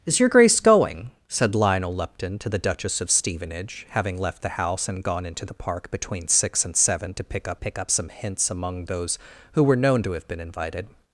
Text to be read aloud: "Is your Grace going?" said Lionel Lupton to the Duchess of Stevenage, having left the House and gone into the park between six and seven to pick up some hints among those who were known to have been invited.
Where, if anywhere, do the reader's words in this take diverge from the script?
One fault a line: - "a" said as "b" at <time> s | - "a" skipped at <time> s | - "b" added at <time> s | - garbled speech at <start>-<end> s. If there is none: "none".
- "pick up" added at 7.5 s